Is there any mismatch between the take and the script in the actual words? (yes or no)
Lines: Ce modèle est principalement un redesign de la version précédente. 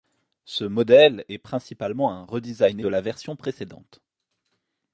no